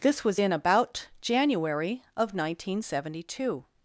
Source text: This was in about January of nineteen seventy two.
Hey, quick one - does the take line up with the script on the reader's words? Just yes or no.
yes